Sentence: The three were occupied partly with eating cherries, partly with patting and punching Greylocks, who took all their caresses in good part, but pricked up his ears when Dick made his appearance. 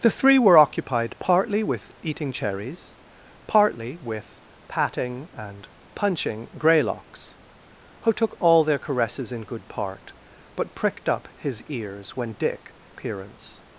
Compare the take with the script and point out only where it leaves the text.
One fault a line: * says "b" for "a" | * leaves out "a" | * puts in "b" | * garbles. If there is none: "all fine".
* leaves out "made his"